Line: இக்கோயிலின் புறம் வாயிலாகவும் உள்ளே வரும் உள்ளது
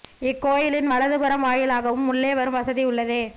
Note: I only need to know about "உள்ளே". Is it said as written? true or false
true